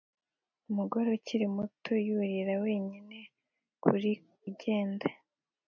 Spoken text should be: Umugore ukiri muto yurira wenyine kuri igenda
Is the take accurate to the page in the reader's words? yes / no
yes